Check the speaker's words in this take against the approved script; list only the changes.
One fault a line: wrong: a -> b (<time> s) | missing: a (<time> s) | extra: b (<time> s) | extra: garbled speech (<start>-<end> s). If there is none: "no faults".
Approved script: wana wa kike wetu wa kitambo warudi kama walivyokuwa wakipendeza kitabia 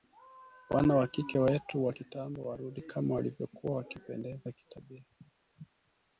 no faults